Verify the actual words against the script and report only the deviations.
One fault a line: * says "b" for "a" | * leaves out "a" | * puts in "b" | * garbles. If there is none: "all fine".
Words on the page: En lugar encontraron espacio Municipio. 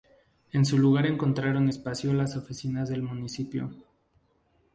* puts in "su"
* puts in "las oficinas del"